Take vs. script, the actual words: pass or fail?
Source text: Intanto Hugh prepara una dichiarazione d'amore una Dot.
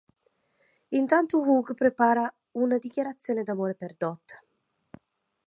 fail